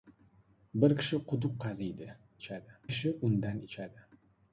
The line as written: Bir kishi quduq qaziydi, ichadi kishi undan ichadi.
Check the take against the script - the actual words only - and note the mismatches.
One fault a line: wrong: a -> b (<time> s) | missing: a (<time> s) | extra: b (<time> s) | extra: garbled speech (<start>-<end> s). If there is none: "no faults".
no faults